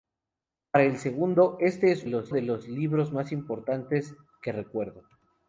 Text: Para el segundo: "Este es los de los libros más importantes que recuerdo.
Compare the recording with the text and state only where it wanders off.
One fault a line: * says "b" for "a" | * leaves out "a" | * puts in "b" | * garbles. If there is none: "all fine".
all fine